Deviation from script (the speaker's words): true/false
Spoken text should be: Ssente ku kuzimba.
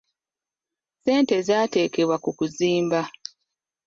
true